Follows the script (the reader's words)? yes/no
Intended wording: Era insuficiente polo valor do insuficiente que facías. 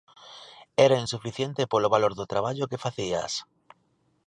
no